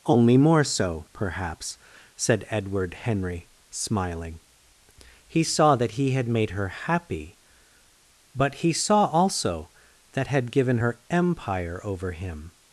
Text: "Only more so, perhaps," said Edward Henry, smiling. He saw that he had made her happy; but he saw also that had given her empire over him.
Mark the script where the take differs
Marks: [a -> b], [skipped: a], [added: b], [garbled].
"Only more so, perhaps," said Edward Henry, smiling. He saw that he had made her happy; but he saw also that had given her empire over him.